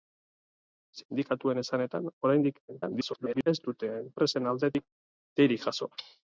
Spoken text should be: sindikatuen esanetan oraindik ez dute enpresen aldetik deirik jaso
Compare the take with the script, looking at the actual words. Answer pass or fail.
fail